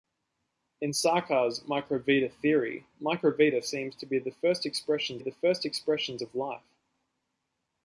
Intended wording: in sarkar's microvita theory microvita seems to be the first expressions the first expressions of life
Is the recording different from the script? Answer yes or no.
no